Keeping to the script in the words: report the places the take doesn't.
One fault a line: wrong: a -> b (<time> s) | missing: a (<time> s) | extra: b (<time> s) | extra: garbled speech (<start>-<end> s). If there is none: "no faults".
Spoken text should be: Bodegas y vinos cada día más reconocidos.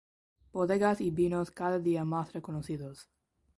no faults